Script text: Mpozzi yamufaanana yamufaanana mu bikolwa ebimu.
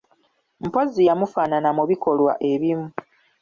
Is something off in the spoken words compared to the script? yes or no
yes